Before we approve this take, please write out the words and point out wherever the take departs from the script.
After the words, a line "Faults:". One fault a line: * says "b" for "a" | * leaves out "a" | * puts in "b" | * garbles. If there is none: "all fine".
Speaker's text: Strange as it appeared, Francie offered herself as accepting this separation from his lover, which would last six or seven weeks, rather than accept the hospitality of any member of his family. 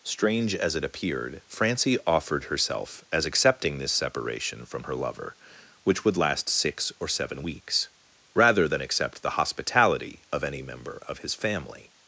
Strange as it appeared, Francie offered herself as accepting this separation from her lover, which would last six or seven weeks, rather than accept the hospitality of any member of his family.
Faults:
* says "her" for "his"